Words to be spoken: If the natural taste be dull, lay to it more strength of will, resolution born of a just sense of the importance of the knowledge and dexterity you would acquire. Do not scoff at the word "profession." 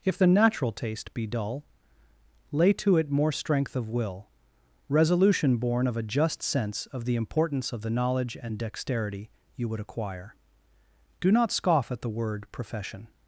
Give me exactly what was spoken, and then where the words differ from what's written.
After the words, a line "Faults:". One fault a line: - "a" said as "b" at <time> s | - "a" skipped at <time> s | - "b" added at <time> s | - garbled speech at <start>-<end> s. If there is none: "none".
If the natural taste be dull, lay to it more strength of will, resolution born of a just sense of the importance of the knowledge and dexterity you would acquire. Do not scoff at the word "profession."
Faults:
none